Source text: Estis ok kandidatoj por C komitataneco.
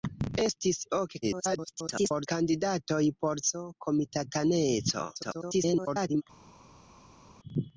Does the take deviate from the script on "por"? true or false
false